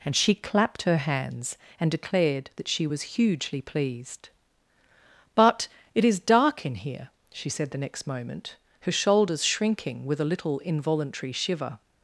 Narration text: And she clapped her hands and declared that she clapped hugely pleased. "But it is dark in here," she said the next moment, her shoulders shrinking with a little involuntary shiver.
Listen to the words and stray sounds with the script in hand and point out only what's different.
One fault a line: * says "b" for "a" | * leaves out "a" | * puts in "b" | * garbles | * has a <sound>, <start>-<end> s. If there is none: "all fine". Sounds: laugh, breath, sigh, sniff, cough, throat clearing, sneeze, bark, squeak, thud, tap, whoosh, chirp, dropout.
* says "was" for "clapped"